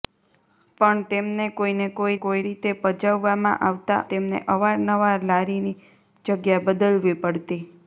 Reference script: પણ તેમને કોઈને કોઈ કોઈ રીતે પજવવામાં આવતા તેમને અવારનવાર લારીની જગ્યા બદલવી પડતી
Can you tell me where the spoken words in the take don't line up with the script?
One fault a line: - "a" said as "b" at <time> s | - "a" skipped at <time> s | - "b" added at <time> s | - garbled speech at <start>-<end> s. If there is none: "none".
none